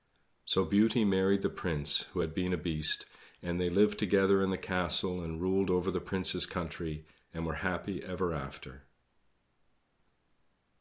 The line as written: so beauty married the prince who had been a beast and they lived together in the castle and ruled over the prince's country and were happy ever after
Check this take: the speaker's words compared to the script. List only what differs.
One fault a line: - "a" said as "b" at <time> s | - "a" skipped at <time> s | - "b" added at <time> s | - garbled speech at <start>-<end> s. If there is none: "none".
none